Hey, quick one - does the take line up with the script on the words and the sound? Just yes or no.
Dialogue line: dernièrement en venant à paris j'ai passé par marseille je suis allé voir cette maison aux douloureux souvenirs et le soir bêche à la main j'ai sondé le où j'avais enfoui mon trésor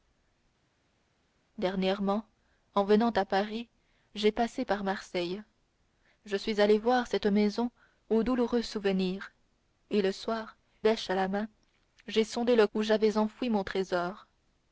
yes